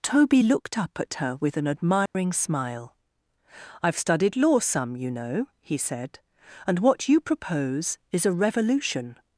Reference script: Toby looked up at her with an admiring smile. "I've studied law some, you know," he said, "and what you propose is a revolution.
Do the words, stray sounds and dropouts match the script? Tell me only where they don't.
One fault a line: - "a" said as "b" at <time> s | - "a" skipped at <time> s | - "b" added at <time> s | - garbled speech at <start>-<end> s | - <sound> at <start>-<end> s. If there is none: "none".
- dropout at 2.1-2.1 s